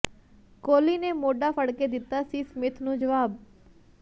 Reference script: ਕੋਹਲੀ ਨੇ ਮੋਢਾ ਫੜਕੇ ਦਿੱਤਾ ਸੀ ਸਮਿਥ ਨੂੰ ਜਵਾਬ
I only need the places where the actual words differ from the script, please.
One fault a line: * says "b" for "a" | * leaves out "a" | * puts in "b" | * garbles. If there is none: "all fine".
all fine